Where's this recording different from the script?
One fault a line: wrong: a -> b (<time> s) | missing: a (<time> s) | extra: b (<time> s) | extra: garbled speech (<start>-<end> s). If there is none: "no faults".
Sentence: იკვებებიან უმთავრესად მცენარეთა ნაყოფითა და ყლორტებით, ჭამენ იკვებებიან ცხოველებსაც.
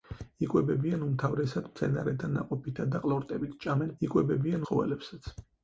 no faults